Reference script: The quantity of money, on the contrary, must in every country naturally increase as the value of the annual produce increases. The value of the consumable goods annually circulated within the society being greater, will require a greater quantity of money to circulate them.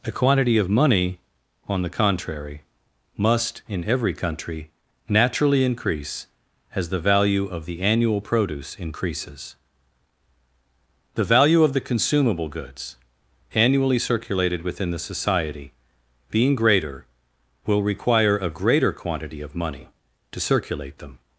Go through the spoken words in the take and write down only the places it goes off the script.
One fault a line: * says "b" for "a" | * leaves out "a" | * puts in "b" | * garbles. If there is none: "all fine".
* says "A" for "The"